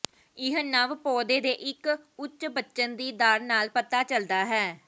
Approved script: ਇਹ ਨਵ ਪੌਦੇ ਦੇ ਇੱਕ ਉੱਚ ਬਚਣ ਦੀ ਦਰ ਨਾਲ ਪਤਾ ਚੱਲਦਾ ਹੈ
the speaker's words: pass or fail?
pass